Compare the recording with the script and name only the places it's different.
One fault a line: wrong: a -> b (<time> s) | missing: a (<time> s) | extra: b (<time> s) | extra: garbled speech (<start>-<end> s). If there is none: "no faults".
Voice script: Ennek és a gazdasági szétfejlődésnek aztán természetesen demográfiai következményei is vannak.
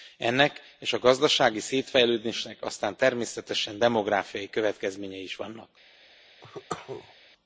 no faults